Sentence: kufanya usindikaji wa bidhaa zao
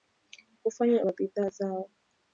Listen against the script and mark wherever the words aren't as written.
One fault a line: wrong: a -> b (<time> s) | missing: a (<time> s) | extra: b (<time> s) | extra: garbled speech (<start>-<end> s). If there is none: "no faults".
missing: usindikaji (1.1 s)